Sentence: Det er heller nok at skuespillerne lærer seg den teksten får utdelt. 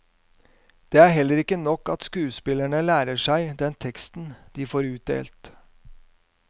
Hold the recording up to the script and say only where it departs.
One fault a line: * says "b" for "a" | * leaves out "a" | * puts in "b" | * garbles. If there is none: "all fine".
* puts in "ikke"
* puts in "de"